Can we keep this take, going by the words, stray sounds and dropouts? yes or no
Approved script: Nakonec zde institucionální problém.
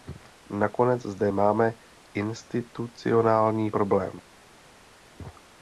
no